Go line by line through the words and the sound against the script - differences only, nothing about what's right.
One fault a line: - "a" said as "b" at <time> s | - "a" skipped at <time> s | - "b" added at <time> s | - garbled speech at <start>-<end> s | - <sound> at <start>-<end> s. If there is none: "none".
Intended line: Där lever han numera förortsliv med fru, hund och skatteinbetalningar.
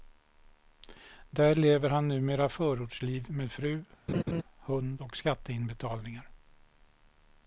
- laugh at 4.1-4.4 s